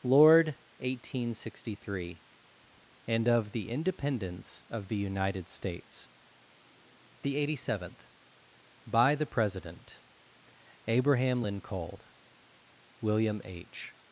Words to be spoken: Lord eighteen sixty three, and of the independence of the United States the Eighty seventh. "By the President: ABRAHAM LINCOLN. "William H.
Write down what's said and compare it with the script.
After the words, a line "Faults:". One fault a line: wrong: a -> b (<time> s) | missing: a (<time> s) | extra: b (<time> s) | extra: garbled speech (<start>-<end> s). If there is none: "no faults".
Lord eighteen sixty three, and of the independence of the United States the Eighty seventh. "By the President: ABRAHAM LINCOLN. "William H.
Faults:
no faults